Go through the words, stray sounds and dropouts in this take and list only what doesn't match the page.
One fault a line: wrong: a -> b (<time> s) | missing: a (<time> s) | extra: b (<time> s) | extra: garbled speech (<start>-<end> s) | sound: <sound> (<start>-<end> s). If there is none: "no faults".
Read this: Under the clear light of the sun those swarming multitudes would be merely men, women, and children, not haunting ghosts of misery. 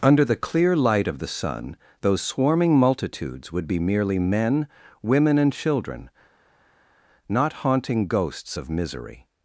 no faults